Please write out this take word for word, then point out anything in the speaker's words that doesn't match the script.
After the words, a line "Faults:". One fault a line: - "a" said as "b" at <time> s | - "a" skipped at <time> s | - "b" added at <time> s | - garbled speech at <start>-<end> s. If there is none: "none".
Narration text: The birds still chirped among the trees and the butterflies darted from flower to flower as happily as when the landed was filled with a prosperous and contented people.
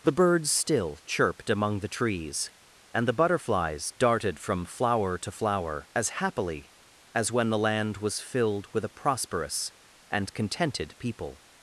The birds still chirped among the trees and the butterflies darted from flower to flower as happily as when the land was filled with a prosperous and contented people.
Faults:
- "landed" said as "land" at 7.6 s